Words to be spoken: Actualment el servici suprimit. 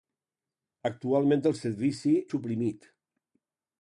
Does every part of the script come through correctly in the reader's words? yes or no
yes